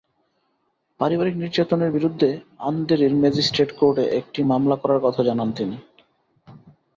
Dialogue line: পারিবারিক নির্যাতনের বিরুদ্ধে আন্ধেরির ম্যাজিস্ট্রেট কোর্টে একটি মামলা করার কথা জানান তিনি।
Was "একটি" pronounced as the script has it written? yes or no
yes